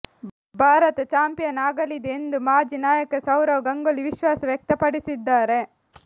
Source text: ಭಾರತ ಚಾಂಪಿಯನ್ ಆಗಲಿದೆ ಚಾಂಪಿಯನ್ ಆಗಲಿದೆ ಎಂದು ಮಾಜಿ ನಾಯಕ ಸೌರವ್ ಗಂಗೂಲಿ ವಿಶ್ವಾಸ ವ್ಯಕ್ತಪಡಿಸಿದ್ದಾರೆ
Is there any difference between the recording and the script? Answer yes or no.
yes